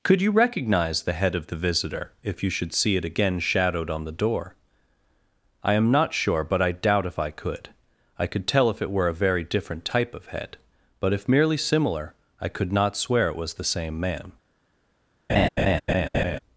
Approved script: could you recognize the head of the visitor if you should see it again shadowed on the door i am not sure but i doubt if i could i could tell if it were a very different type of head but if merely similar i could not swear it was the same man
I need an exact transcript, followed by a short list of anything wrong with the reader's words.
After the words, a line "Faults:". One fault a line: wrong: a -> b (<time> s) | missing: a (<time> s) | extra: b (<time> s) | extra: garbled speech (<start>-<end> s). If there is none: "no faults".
could you recognize the head of the visitor if you should see it again shadowed on the door i am not sure but i doubt if i could i could tell if it were a very different type of head but if merely similar i could not swear it was the same man
Faults:
no faults